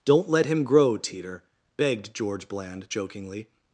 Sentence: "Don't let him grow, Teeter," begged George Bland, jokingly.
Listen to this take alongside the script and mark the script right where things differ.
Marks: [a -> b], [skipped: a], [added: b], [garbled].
"Don't let him grow, Teeter," begged George Bland, jokingly.